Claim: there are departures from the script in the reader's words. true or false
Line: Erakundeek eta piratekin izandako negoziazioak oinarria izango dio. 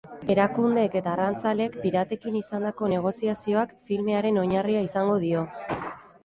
true